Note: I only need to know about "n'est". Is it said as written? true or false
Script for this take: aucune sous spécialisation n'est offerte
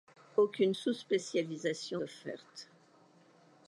false